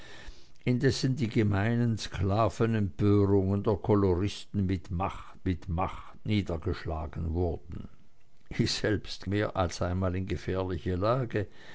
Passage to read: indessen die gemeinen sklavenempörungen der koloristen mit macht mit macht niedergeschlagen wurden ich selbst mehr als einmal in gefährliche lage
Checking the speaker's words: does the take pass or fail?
pass